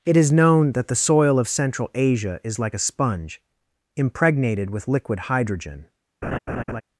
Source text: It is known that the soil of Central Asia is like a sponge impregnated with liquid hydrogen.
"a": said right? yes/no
yes